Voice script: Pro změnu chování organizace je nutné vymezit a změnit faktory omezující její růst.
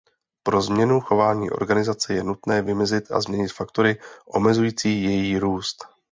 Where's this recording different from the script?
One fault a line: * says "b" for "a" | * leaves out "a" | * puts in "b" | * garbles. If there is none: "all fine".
all fine